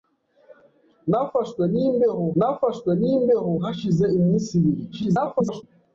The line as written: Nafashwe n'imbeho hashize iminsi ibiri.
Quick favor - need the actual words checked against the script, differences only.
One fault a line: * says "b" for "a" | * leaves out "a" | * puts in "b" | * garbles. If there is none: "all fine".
* puts in "nafashwe n'imbeho"
* garbles